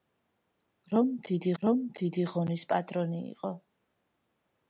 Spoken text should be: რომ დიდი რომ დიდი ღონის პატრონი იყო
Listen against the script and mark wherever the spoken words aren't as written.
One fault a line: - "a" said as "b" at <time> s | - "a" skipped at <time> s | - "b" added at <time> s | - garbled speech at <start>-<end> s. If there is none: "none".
none